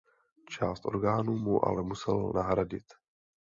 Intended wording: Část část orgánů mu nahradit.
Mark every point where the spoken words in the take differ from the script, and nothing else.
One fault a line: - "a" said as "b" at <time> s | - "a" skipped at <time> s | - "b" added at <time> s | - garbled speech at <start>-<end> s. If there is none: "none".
- "část" skipped at 0.8 s
- "ale musel" added at 1.6 s